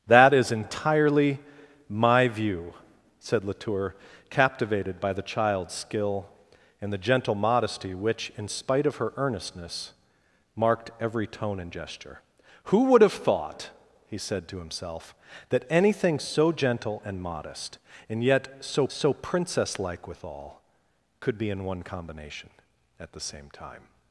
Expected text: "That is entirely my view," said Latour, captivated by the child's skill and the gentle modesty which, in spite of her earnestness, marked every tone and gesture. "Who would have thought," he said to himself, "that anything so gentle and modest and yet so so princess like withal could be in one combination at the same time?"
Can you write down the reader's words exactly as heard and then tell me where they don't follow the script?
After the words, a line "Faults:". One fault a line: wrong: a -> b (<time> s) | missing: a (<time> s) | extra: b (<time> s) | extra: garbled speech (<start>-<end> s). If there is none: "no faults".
"That is entirely my view," said Latour, captivated by the child's skill and the gentle modesty which, in spite of her earnestness, marked every tone and gesture. "Who would have thought," he said to himself, "that anything so gentle and modest and yet so so princess like withal could be in one combination at the same time?"
Faults:
no faults